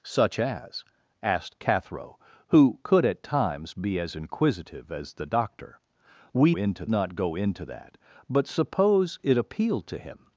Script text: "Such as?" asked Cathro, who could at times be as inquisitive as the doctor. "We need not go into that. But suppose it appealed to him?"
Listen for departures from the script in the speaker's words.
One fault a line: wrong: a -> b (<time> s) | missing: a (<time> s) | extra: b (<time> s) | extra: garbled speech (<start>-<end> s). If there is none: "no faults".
wrong: need -> into (6.6 s)